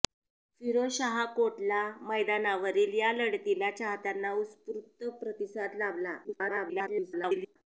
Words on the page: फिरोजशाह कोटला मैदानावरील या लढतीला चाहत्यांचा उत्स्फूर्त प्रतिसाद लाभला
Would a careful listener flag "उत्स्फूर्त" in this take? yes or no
no